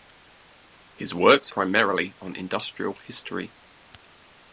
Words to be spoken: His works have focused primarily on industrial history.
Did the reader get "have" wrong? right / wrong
wrong